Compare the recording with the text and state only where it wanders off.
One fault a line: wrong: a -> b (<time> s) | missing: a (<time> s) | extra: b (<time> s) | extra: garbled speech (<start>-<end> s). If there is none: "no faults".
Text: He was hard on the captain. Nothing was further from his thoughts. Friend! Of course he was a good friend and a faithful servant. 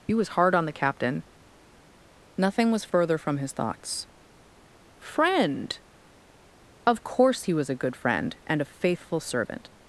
no faults